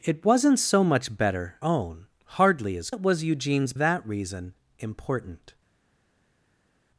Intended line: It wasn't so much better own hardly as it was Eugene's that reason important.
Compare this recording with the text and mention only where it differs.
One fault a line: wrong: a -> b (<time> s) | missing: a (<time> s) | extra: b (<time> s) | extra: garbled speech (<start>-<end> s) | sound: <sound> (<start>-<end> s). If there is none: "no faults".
no faults